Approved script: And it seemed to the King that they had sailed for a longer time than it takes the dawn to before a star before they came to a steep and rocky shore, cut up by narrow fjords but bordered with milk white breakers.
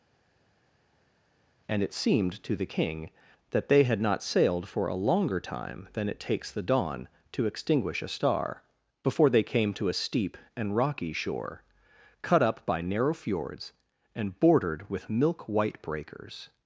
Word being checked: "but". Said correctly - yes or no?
no